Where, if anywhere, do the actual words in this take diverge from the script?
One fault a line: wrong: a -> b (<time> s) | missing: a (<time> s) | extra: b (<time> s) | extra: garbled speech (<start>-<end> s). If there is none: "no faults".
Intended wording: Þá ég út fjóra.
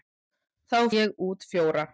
no faults